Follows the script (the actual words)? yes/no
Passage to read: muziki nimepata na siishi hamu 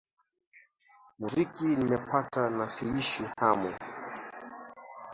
yes